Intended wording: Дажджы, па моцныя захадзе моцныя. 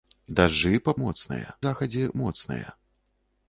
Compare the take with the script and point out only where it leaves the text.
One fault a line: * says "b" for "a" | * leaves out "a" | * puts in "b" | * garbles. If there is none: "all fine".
all fine